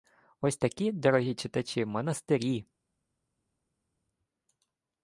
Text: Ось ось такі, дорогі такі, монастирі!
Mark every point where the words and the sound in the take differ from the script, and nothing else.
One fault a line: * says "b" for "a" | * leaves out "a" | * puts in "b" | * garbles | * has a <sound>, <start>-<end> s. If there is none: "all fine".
* leaves out "ось"
* says "читачі" for "такі"